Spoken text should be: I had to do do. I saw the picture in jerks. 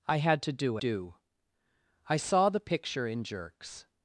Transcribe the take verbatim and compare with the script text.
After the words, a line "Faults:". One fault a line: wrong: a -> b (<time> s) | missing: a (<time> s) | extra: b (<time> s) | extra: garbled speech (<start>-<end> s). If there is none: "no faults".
I had to do do. I saw the picture in jerks.
Faults:
no faults